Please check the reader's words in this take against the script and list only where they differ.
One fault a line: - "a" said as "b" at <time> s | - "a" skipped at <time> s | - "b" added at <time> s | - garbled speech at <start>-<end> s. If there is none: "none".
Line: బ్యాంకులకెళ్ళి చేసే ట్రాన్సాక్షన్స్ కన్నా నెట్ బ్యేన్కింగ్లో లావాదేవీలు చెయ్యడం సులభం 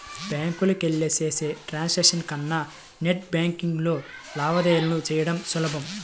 none